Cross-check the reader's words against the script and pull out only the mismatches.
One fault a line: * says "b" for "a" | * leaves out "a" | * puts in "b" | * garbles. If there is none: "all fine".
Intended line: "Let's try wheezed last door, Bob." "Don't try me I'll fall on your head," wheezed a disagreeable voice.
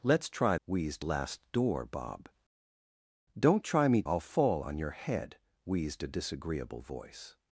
all fine